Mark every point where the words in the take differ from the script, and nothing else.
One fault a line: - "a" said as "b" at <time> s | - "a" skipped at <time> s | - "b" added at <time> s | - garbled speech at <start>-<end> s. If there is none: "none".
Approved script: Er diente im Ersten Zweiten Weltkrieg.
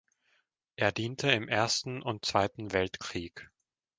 - "und" added at 2.0 s